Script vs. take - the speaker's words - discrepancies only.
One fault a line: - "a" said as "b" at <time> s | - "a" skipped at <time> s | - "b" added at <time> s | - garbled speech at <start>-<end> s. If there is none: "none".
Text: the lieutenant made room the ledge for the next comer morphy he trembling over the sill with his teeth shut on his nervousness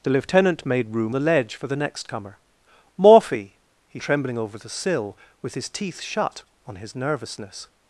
none